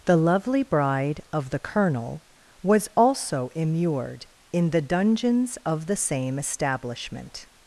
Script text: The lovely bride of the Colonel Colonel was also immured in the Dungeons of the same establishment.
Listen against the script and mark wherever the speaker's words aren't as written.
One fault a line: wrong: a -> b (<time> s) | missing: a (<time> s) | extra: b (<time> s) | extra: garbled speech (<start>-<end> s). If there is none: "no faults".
missing: Colonel (2.2 s)